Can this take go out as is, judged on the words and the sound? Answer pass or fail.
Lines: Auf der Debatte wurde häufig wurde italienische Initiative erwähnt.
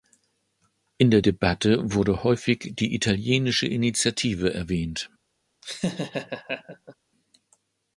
fail